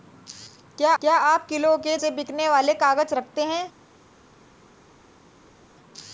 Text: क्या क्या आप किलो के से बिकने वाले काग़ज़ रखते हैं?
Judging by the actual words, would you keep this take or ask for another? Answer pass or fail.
pass